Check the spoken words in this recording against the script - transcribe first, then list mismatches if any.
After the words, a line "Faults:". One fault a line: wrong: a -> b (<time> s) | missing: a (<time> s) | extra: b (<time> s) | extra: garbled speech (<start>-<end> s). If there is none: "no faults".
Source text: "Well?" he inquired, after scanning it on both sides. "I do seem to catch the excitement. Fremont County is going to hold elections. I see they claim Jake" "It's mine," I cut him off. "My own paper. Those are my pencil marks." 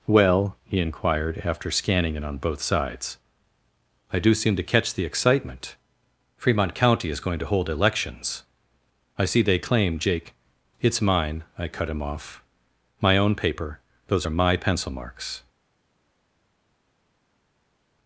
"Well?" he inquired, after scanning it on both sides. "I do seem to catch the excitement. Fremont County is going to hold elections. I see they claim Jake" "It's mine," I cut him off. "My own paper. Those are my pencil marks."
Faults:
no faults